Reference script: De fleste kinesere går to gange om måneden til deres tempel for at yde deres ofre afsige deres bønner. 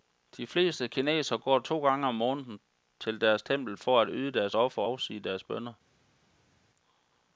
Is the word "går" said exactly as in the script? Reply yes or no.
yes